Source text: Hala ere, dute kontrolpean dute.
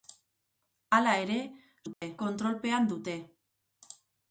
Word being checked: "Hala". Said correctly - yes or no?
yes